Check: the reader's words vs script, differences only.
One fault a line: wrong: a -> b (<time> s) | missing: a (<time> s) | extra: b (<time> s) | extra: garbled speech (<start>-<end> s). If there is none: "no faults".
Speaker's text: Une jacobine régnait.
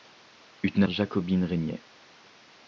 no faults